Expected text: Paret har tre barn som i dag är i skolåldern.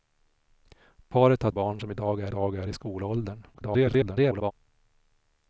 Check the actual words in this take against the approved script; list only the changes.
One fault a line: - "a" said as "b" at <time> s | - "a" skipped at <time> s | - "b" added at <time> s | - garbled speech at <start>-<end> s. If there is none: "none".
- "tre" skipped at 1.5 s
- "dag är" added at 2.3 s
- garbled speech at 3.5-4.5 s